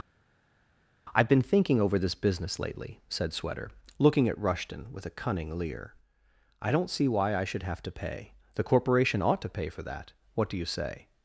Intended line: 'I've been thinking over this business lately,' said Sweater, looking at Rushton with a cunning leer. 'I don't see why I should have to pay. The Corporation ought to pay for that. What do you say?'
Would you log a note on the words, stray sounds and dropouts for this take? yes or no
no